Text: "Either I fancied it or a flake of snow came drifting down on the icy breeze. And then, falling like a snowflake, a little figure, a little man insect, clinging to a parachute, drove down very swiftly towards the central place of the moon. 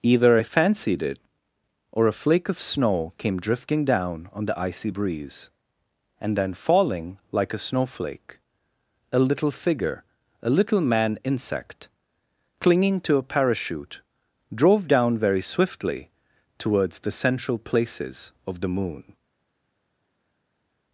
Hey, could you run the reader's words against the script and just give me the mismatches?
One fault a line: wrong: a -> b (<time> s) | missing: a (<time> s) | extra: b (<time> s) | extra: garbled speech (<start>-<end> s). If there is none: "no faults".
wrong: place -> places (17.6 s)